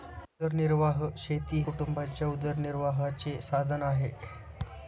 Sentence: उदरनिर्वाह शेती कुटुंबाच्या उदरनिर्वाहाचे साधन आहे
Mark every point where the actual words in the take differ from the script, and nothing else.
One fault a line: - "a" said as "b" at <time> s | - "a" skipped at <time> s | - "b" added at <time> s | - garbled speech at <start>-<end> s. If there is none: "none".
none